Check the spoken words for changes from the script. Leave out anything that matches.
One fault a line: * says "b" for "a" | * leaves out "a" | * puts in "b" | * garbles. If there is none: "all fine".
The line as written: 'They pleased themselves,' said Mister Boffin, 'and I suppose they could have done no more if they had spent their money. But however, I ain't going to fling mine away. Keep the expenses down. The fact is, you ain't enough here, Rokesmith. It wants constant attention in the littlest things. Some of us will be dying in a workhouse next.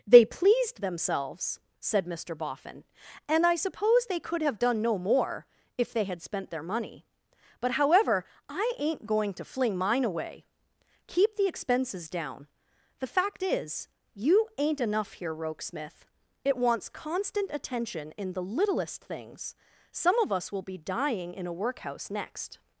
all fine